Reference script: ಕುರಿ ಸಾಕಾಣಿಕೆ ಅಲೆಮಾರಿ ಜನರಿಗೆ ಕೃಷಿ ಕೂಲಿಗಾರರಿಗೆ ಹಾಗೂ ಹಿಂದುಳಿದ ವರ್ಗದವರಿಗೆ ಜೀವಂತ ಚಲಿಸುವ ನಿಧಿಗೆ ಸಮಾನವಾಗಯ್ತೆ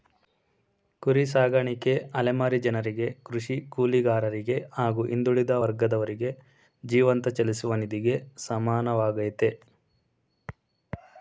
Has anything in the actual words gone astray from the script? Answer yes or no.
no